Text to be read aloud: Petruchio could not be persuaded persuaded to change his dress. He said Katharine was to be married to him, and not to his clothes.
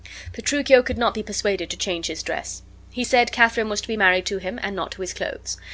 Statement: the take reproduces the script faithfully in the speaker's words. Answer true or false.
false